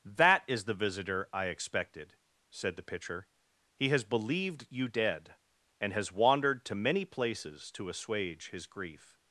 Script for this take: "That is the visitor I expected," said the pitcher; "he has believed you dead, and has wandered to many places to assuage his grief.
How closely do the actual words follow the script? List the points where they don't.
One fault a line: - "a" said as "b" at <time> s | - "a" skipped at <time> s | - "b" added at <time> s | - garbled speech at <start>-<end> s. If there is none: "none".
none